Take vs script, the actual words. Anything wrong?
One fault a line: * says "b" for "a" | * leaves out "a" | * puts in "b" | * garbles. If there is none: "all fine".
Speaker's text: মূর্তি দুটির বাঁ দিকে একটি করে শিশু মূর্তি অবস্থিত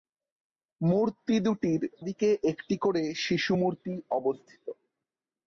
* leaves out "বাঁ"